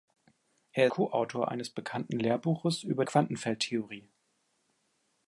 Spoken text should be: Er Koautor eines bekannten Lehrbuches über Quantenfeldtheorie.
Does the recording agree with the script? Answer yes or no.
yes